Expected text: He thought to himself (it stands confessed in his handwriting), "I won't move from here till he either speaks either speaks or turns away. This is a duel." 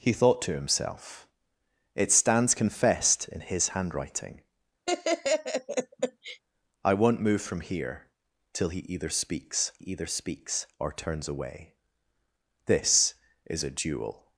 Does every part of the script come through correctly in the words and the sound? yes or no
no